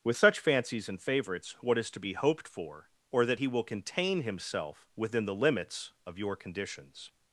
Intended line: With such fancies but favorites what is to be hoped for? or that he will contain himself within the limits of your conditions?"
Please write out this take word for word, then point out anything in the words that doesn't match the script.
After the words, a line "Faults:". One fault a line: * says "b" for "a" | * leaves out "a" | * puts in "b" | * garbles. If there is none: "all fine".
With such fancies and favorites what is to be hoped for? or that he will contain himself within the limits of your conditions?"
Faults:
* says "and" for "but"